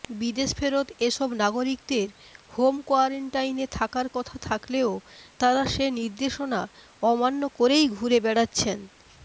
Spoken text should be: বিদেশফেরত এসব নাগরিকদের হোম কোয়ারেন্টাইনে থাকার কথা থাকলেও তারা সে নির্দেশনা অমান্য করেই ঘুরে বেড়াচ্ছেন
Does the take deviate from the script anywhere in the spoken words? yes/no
no